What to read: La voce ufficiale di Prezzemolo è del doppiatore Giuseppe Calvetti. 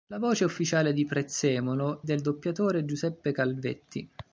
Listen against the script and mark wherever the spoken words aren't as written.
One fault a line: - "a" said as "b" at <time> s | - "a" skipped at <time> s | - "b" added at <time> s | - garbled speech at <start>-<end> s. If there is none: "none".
- "è" skipped at 2.0 s